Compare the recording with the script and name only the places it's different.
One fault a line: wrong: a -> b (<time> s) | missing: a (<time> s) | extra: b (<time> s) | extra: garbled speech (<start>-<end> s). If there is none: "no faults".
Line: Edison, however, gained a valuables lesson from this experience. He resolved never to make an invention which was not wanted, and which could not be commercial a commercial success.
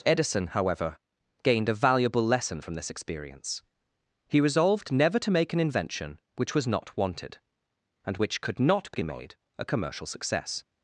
wrong: valuables -> valuable (1.7 s)
wrong: commercial -> made (9.0 s)